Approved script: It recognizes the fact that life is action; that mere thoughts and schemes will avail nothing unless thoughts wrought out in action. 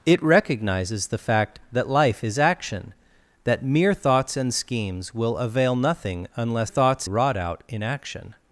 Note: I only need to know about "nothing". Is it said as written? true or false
true